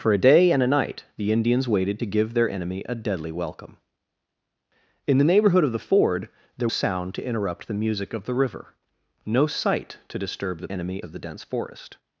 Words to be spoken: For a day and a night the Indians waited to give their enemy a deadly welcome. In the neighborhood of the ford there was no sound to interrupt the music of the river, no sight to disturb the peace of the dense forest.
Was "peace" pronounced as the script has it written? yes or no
no